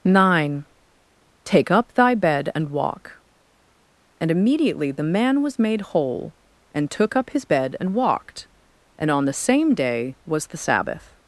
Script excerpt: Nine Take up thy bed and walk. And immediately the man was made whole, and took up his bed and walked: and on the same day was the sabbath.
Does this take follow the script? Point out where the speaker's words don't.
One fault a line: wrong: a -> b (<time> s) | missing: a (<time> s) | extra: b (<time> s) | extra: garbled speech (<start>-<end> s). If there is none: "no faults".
no faults